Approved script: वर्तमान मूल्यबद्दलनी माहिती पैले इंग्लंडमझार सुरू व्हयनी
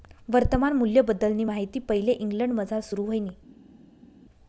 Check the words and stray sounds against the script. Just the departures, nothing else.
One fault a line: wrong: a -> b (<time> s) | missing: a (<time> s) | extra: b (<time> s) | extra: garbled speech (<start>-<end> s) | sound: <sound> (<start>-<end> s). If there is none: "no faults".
no faults